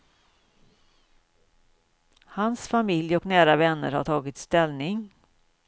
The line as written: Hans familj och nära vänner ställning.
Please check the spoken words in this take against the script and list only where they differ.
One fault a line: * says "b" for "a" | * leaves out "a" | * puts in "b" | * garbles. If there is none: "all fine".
* puts in "har tagit"